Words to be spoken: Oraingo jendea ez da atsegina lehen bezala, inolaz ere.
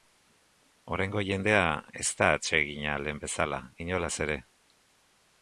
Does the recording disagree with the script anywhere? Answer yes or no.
no